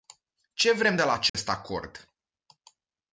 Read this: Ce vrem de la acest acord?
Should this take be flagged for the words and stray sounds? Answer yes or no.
yes